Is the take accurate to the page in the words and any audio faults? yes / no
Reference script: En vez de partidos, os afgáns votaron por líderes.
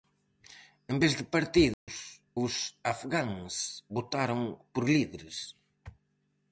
no